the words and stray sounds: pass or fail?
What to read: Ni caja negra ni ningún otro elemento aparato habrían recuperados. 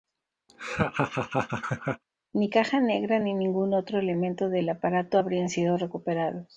fail